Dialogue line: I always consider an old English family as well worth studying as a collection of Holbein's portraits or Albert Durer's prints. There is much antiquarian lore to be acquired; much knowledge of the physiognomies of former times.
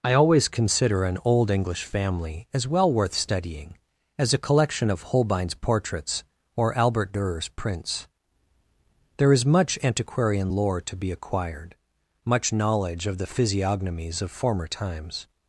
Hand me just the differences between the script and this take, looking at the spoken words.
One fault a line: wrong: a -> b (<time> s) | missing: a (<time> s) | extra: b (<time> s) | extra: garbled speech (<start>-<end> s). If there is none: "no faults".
no faults